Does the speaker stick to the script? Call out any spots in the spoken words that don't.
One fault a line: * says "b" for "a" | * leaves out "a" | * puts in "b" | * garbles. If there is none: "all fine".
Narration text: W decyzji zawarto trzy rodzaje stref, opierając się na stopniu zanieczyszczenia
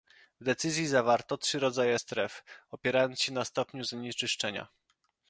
all fine